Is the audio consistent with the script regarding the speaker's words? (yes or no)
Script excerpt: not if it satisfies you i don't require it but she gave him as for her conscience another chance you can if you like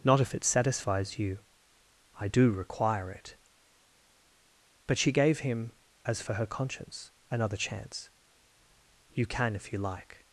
no